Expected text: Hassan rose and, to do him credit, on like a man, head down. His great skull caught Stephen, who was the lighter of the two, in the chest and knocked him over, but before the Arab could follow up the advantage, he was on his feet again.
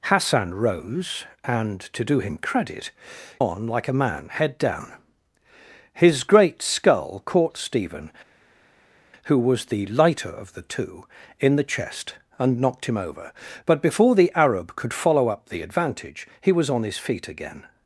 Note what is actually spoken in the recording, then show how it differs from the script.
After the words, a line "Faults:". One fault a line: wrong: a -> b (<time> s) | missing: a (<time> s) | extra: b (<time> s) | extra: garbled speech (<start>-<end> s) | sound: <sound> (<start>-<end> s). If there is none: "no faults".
Hassan rose and, to do him credit, on like a man, head down. His great skull caught Stephen, who was the lighter of the two, in the chest and knocked him over, but before the Arab could follow up the advantage, he was on his feet again.
Faults:
no faults